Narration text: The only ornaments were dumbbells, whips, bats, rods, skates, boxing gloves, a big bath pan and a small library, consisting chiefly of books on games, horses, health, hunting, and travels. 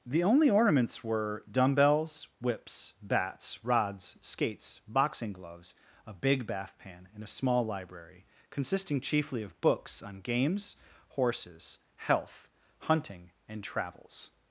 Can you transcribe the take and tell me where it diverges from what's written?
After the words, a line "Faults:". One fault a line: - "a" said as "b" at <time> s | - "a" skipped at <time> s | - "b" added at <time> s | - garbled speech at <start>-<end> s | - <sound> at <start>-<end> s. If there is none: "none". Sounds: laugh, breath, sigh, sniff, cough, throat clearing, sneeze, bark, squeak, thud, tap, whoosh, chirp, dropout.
The only ornaments were dumbbells, whips, bats, rods, skates, boxing gloves, a big bath pan and a small library, consisting chiefly of books on games, horses, health, hunting, and travels.
Faults:
none